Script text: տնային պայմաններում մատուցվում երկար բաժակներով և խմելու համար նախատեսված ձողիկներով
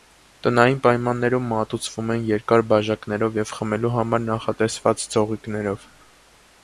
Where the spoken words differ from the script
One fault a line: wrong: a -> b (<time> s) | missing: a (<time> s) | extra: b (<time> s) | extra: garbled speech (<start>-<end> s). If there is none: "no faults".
extra: են (2.1 s)